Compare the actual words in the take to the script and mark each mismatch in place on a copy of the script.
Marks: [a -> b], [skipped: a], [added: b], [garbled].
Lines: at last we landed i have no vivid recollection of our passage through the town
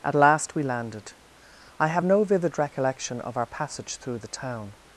at last we landed i have no vivid recollection of our passage through the town